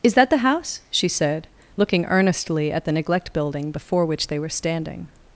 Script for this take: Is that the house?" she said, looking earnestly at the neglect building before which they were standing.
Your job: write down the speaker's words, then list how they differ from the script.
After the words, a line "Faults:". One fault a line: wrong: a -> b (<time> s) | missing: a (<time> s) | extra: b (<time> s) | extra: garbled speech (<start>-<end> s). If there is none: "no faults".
Is that the house?" she said, looking earnestly at the neglect building before which they were standing.
Faults:
no faults